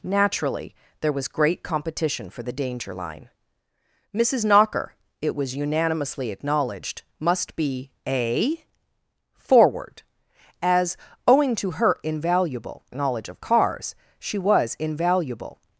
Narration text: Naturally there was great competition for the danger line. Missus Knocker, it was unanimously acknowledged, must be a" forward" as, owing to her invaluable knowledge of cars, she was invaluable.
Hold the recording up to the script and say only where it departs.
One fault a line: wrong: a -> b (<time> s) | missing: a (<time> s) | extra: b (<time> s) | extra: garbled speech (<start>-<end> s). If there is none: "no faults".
no faults